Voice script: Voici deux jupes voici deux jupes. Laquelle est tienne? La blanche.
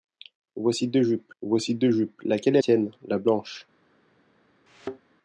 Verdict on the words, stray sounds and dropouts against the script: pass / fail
fail